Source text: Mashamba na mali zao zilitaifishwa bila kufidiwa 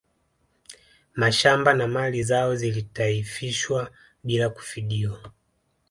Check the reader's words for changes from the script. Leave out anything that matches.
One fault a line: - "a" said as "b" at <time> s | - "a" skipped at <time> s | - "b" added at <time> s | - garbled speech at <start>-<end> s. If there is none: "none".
none